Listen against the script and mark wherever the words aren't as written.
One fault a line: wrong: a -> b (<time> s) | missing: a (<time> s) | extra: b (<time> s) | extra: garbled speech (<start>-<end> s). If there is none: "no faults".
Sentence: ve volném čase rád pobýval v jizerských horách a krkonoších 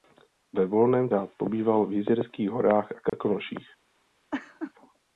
missing: čase (1.1 s)